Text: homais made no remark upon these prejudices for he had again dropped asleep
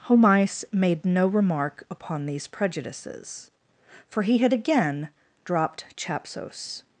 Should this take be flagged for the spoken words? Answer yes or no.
yes